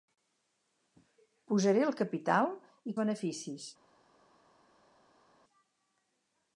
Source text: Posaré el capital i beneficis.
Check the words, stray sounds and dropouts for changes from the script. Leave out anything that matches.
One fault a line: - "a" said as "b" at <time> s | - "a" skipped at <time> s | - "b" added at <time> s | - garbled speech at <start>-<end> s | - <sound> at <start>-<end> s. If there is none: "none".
none